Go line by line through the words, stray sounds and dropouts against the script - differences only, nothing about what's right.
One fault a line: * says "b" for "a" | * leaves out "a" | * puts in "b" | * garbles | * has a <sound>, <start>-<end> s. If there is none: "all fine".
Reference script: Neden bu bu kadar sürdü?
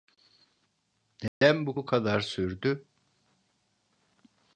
* has a dropout, 1.3-1.4 s